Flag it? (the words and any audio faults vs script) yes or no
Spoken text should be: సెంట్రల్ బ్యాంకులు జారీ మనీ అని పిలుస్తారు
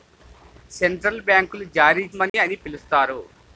yes